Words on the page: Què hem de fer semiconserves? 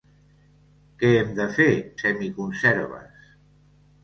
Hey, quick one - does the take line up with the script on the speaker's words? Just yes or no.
yes